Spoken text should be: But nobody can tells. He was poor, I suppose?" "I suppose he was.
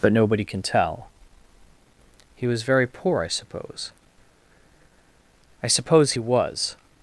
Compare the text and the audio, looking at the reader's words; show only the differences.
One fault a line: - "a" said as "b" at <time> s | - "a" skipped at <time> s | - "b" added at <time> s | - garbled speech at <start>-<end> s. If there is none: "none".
- "tells" said as "tell" at 0.6 s
- "very" added at 2.6 s